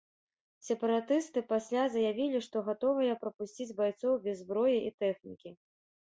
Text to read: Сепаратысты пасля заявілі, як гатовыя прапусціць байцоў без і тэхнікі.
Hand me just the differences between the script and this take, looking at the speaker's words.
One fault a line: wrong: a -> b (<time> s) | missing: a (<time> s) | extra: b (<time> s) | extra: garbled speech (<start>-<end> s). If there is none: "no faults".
wrong: як -> што (2.5 s)
extra: зброі (4.4 s)